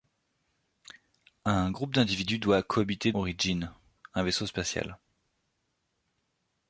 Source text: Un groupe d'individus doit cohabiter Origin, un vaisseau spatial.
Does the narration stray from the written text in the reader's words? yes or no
no